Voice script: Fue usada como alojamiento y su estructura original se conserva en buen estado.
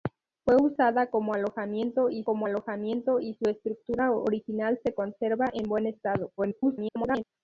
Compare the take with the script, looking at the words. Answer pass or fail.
fail